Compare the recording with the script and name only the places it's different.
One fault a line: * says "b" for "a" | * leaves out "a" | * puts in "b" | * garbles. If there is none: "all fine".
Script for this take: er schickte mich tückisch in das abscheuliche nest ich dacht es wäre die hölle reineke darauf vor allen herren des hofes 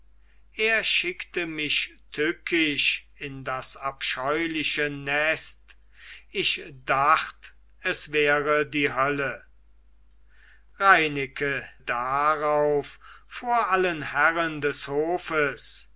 all fine